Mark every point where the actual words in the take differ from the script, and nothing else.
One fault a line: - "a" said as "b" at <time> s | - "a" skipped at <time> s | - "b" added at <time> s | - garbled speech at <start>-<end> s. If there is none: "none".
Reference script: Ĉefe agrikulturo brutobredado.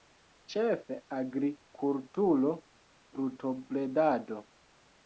none